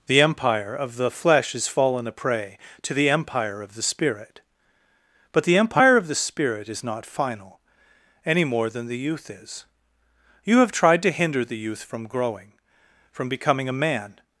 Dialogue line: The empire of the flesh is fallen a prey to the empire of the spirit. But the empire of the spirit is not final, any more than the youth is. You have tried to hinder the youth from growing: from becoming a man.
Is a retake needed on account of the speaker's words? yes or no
no